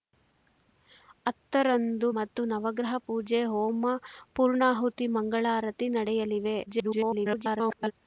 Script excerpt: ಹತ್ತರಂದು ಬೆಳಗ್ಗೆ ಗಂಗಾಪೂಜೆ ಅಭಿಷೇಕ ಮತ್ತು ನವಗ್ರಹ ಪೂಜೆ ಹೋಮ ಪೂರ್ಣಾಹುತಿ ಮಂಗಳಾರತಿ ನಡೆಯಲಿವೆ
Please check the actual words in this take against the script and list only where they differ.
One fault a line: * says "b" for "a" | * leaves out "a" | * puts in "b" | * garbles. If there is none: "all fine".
* leaves out "ಬೆಳಗ್ಗೆ ಗಂಗಾಪೂಜೆ ಅಭಿಷೇಕ"
* garbles